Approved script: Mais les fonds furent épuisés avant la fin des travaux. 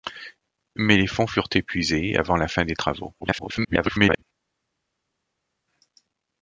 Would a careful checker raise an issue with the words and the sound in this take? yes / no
yes